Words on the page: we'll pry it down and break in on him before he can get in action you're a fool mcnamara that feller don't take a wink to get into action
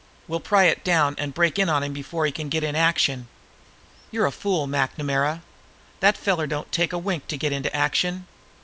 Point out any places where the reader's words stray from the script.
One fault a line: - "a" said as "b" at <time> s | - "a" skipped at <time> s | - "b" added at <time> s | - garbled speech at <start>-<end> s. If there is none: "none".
none